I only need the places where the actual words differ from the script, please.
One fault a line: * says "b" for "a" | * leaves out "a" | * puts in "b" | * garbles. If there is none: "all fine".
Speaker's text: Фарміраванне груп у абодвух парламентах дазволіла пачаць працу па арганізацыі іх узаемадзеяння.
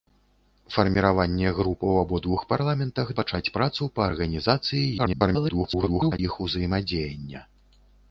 * leaves out "дазволіла"
* garbles